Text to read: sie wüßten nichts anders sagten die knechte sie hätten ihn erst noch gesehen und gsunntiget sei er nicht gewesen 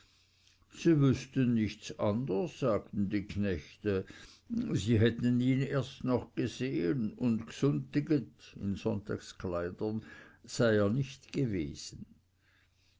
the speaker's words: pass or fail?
pass